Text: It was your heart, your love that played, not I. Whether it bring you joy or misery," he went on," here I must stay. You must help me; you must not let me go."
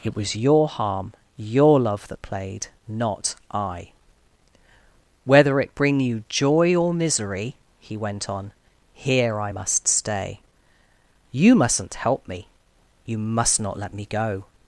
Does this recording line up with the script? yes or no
no